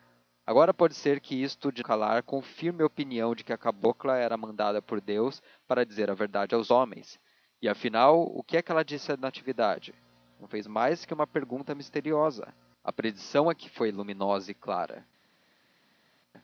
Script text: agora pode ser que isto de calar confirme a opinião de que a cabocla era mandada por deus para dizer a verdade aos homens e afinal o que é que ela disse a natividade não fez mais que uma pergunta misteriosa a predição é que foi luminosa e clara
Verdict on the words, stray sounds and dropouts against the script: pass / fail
pass